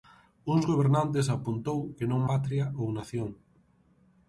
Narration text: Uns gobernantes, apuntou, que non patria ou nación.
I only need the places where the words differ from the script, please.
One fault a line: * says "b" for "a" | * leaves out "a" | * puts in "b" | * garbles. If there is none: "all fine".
all fine